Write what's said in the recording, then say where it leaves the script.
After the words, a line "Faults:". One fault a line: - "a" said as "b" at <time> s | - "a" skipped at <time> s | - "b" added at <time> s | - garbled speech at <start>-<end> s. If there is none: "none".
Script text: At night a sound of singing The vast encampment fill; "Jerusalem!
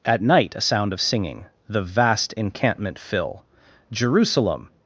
At night a sound of singing The vast encampment fill; "Jerusalem!
Faults:
none